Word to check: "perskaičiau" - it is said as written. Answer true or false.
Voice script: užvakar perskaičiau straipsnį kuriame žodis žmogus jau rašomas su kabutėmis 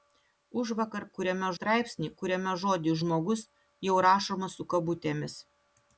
false